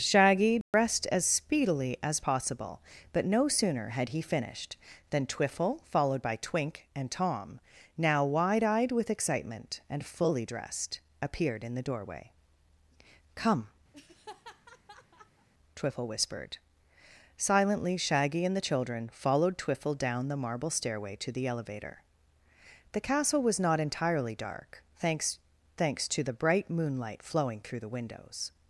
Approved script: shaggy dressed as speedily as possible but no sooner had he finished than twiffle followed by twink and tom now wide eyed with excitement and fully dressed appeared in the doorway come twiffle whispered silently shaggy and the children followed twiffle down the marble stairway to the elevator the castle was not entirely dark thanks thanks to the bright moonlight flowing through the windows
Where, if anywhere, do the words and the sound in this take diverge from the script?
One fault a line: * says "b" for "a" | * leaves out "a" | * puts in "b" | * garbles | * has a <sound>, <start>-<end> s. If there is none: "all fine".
* has a dropout, 0.6-0.7 s
* has a laugh, 13.9-15.5 s